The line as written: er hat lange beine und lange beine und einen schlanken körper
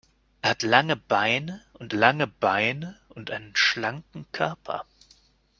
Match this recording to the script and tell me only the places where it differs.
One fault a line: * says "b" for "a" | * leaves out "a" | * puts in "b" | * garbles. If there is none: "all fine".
all fine